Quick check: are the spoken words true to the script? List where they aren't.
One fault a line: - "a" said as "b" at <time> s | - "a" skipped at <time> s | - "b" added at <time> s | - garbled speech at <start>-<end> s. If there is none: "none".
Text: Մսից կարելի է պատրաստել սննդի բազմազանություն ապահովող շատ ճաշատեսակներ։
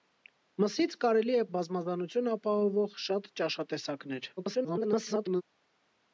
- "պատրաստել սննդի" skipped at 1.4 s
- garbled speech at 4.4-5.4 s